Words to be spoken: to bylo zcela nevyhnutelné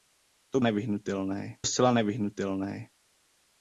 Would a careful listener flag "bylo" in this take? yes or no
yes